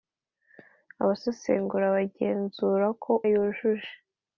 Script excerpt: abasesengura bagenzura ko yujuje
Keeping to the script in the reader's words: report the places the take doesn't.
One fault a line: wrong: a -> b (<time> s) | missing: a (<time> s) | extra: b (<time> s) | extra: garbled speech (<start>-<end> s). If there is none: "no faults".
no faults